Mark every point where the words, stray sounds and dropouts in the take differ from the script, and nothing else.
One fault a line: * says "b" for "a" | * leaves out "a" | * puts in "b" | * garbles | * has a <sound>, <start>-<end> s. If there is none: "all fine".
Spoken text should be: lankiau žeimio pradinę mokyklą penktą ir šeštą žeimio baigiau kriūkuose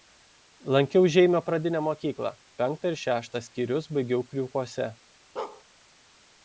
* says "skyrius" for "žeimio"
* has a bark, 5.4-5.6 s